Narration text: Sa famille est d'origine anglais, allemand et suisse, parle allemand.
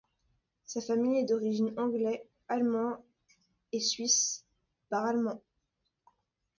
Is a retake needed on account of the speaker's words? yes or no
no